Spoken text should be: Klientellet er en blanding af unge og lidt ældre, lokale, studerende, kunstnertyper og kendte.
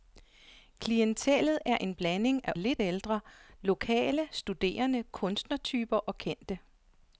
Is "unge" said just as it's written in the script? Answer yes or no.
no